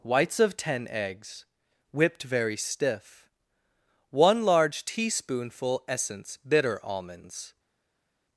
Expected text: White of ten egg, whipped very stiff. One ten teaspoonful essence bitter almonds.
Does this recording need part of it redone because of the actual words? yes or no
yes